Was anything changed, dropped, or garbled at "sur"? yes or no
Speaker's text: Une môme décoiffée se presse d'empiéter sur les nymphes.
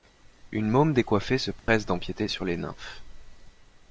no